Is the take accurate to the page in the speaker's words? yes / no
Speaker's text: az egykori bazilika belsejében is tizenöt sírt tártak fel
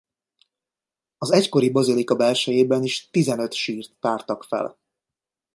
yes